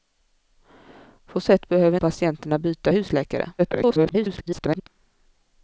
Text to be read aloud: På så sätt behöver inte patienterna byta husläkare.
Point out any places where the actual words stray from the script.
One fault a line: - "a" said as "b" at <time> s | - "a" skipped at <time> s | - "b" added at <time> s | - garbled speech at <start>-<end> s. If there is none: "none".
- "så" skipped at 1.4 s
- "inte" skipped at 2.0 s
- garbled speech at 3.6-4.9 s